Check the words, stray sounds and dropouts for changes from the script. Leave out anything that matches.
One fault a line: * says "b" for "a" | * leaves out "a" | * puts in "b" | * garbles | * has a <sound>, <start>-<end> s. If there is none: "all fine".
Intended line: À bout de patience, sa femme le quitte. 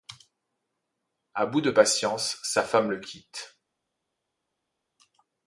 all fine